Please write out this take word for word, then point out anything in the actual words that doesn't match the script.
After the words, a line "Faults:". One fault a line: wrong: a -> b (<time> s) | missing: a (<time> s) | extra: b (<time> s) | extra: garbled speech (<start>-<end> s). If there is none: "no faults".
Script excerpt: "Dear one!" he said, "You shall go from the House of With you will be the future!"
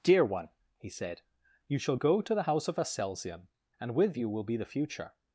"Dear one!" he said, "You shall go to the House of Aselzion, and with you will be the future!"
Faults:
wrong: from -> to (2.2 s)
extra: Aselzion and (2.8 s)